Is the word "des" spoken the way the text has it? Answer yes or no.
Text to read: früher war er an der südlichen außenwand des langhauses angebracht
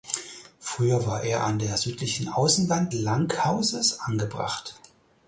no